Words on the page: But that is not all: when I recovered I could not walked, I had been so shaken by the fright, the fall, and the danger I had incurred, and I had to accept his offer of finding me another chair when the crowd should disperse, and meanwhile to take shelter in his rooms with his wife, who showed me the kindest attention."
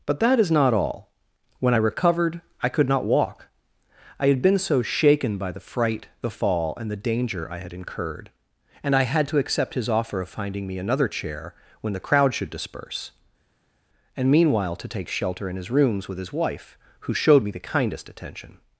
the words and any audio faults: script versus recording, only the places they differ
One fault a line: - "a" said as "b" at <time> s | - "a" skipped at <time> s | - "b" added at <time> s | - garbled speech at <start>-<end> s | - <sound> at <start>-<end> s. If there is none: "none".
- "walked" said as "walk" at 3.0 s